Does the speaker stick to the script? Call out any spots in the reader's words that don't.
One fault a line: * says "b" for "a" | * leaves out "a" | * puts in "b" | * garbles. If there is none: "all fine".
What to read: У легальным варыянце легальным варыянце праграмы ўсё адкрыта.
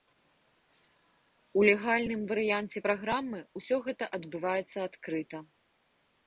* says "праграмы ўсё гэта адбываецца" for "легальным варыянце праграмы ўсё"